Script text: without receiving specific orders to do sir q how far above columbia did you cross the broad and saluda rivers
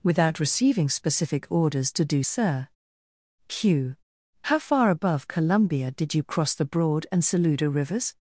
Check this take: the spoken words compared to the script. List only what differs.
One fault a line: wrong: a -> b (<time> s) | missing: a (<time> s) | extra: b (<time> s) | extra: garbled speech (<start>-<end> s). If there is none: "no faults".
no faults